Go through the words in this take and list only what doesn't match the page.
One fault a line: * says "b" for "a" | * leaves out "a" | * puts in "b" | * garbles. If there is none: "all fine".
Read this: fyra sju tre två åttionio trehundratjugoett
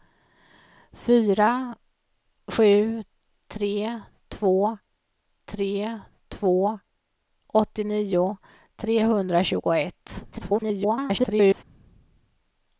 * puts in "tre två"
* garbles